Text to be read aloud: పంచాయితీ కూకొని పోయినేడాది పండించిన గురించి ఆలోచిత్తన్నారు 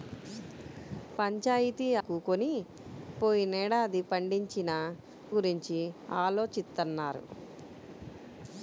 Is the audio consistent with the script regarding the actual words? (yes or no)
yes